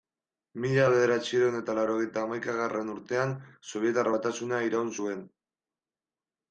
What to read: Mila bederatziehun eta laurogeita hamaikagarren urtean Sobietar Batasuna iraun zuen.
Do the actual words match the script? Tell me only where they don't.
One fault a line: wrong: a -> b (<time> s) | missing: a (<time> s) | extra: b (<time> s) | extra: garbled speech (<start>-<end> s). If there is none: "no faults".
no faults